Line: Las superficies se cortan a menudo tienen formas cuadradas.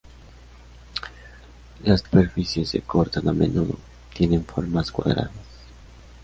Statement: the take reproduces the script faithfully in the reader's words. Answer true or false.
true